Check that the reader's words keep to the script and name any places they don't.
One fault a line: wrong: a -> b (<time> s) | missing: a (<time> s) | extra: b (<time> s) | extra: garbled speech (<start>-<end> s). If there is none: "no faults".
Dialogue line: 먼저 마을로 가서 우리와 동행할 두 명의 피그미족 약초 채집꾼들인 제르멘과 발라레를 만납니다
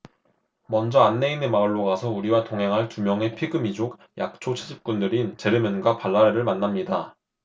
extra: 안내인의 (1.0 s)